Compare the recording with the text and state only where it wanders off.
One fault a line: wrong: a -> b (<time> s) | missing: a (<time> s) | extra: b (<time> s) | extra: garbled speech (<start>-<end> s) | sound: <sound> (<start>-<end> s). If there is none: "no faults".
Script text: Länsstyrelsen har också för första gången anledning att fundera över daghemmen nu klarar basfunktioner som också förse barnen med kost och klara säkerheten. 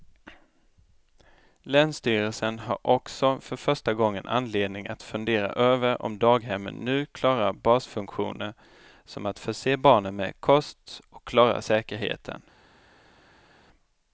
extra: om (6.0 s)
wrong: också -> att (9.2 s)